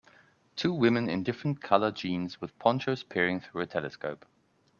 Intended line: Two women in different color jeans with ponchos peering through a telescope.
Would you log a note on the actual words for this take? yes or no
no